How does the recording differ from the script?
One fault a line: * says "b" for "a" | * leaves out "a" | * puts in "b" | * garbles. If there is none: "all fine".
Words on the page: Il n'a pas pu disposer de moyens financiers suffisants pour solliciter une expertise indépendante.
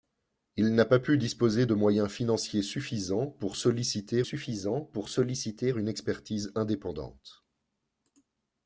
* puts in "suffisants pour solliciter"